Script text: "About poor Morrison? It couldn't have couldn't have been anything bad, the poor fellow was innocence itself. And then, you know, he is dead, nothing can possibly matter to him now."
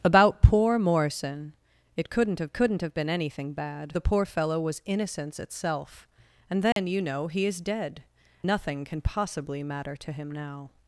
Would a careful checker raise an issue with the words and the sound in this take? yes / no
yes